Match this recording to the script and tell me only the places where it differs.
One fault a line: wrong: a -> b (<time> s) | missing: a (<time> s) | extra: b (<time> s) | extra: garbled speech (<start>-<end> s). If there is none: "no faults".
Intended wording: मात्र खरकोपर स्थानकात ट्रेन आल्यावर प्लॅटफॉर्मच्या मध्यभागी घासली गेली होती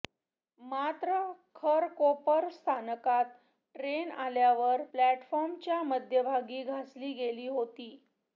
no faults